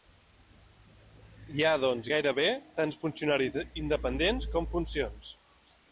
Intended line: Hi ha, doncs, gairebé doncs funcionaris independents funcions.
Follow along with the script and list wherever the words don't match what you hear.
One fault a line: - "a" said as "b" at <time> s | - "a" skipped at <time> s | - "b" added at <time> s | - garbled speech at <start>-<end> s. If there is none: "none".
- "doncs" said as "tants" at 2.8 s
- "com" added at 4.6 s